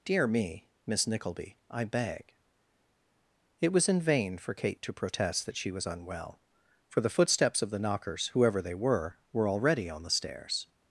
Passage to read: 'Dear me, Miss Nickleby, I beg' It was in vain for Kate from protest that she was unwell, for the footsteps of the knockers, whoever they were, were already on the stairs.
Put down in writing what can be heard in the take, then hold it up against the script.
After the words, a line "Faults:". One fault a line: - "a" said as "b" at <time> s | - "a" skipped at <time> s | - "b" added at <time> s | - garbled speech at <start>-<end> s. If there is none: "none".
'Dear me, Miss Nickleby, I beg' It was in vain for Kate to protest that she was unwell, for the footsteps of the knockers, whoever they were, were already on the stairs.
Faults:
- "from" said as "to" at 4.8 s